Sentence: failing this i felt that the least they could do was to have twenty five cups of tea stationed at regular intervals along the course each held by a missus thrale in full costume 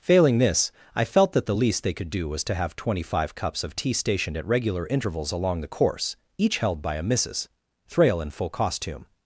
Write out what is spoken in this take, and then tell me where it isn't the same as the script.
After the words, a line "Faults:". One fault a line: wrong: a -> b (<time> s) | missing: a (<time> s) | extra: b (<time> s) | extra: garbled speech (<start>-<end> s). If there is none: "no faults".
failing this i felt that the least they could do was to have twenty five cups of tea stationed at regular intervals along the course each held by a missus thrale in full costume
Faults:
no faults